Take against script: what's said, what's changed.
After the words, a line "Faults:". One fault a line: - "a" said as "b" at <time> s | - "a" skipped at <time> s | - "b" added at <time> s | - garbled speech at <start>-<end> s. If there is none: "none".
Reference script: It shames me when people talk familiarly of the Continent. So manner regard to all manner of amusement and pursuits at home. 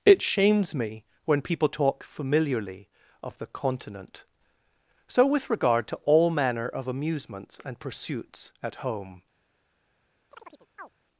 It shames me when people talk familiarly of the Continent. So with regard to all manner of amusements and pursuits at home.
Faults:
- "manner" said as "with" at 5.3 s
- "amusement" said as "amusements" at 6.9 s